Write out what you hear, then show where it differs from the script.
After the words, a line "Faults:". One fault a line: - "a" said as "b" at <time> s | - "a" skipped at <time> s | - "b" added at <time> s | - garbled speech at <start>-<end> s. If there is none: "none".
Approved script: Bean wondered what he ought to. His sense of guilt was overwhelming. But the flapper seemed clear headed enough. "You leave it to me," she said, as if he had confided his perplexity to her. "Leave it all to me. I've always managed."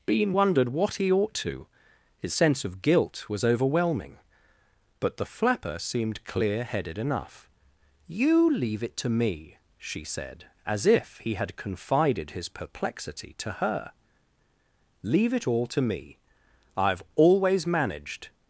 Bean wondered what he ought to. His sense of guilt was overwhelming. But the flapper seemed clear headed enough. "You leave it to me," she said, as if he had confided his perplexity to her. "Leave it all to me. I've always managed."
Faults:
none